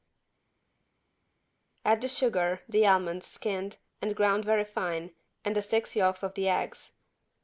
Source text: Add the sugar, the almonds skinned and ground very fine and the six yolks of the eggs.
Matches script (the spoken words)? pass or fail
pass